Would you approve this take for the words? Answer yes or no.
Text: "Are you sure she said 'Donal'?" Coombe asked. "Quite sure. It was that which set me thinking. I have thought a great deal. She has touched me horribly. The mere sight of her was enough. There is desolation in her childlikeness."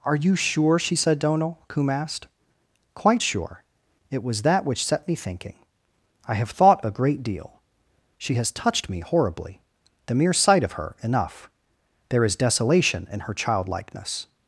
no